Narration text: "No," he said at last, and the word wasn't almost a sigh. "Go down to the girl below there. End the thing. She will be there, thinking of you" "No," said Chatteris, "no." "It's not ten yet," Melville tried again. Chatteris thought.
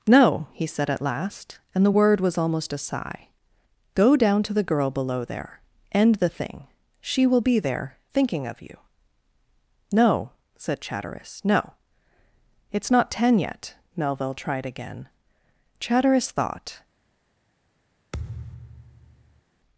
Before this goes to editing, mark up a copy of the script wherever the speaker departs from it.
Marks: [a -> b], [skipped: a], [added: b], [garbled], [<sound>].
"No," he said at last, and the word [wasn't -> was] almost a sigh. "Go down to the girl below there. End the thing. She will be there, thinking of you" "No," said Chatteris, "no." "It's not ten yet," Melville tried again. Chatteris thought. [thud]